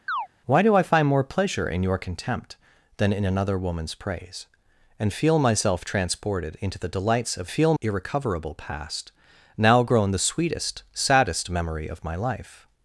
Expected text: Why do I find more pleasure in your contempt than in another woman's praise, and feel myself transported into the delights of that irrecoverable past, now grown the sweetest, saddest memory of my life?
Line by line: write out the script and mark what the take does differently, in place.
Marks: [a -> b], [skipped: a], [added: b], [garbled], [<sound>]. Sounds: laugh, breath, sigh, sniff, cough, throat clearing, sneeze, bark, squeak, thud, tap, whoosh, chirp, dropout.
[chirp] Why do I find more pleasure in your contempt than in another woman's praise, and feel myself transported into the delights of [that -> feel] irrecoverable past, now grown the sweetest, saddest memory of my life?